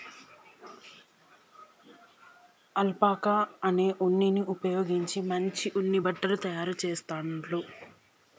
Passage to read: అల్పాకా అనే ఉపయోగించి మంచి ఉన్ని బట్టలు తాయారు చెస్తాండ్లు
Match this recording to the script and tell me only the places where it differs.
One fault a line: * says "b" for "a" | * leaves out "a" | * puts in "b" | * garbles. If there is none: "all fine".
* puts in "ఉన్నిని"